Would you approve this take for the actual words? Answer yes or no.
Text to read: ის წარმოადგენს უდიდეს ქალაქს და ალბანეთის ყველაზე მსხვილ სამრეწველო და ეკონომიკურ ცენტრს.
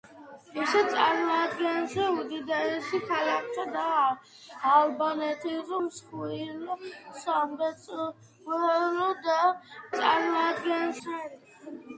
no